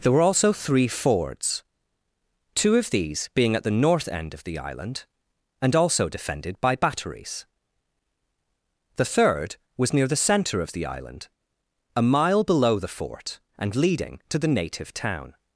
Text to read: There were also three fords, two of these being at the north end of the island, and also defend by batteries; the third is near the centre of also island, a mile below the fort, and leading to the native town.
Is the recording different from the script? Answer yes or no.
yes